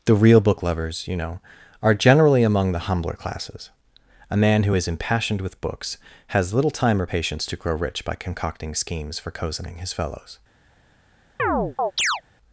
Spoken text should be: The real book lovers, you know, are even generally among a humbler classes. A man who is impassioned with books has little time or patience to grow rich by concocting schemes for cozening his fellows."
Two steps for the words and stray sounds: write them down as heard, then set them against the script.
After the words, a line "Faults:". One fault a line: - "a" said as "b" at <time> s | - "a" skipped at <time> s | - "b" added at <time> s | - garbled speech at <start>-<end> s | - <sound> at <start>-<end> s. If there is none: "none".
The real book lovers, you know, are generally among the humbler classes. A man who is impassioned with books has little time or patience to grow rich by concocting schemes for cozening his fellows."
Faults:
- "even" skipped at 1.9 s
- "a" said as "the" at 2.7 s
- chirp at 11.4-12.2 s